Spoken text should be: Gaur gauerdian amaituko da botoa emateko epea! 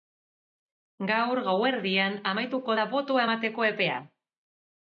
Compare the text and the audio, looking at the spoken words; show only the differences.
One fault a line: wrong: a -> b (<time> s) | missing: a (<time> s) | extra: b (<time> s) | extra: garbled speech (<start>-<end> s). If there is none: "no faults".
no faults